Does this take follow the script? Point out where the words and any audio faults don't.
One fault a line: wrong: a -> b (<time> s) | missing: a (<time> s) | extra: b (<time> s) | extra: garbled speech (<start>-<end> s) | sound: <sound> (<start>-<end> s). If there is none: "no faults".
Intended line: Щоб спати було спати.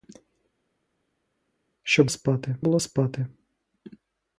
no faults